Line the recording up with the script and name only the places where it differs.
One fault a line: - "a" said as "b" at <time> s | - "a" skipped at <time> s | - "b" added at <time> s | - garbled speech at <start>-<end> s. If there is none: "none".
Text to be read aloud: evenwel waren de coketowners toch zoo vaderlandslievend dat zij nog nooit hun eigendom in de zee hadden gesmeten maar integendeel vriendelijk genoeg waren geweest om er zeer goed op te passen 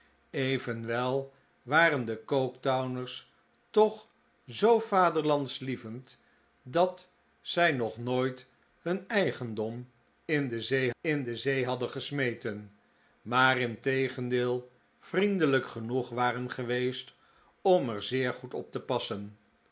- "in de zee" added at 11.0 s